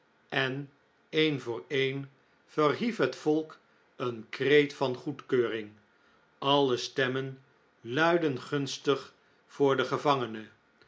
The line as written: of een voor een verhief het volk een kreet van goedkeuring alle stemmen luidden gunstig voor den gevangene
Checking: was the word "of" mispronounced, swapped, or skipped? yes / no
yes